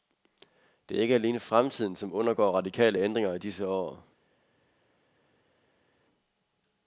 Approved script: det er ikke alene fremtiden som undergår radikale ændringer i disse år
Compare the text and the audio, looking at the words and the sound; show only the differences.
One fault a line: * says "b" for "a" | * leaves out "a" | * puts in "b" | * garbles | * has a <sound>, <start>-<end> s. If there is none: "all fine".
all fine